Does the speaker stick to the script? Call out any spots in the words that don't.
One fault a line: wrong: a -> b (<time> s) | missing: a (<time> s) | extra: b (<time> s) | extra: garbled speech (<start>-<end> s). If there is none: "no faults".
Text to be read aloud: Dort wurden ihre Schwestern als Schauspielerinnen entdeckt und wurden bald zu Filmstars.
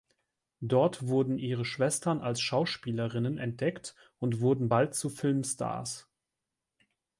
no faults